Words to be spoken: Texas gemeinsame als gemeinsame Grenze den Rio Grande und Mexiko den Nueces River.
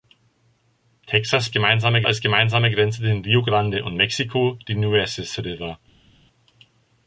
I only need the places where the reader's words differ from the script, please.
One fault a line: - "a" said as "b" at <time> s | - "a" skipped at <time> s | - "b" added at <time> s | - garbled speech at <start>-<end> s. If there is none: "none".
none